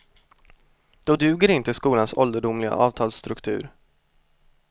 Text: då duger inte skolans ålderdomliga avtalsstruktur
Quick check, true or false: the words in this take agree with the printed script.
true